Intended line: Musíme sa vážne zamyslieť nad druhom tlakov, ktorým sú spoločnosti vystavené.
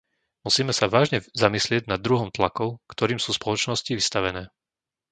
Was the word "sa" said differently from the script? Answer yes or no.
no